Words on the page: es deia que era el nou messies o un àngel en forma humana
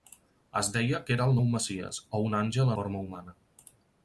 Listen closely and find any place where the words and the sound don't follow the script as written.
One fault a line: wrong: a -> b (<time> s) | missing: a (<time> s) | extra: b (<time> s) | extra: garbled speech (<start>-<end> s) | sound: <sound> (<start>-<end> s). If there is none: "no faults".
missing: en (2.7 s)